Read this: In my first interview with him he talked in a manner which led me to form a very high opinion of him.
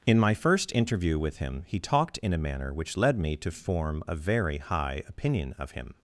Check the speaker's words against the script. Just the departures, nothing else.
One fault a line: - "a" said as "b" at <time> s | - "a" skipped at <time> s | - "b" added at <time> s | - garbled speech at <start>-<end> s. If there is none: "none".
none